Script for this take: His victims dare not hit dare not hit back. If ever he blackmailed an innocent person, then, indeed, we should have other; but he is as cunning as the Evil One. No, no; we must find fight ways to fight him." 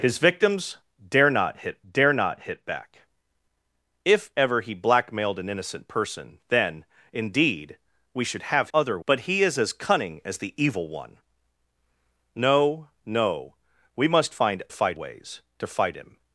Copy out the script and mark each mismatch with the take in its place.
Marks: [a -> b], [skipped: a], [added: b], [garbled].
His victims dare not hit dare not hit back. If ever he blackmailed an innocent person, then, indeed, we should have other; but he is as cunning as the Evil One. No, no; we must find fight ways to fight him."